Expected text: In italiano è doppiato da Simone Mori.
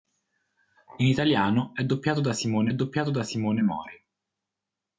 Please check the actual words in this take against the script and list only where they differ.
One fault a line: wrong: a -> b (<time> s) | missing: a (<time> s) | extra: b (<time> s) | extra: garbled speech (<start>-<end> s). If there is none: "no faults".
extra: doppiato da Simone (2.7 s)